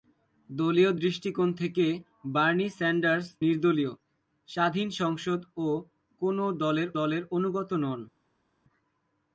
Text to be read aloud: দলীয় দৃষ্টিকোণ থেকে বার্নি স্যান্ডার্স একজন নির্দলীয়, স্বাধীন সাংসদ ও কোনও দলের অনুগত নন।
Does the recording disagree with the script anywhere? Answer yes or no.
yes